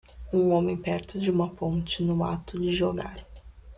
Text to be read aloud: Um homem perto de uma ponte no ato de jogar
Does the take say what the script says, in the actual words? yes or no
yes